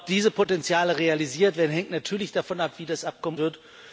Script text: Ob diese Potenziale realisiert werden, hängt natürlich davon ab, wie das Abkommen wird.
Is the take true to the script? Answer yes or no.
yes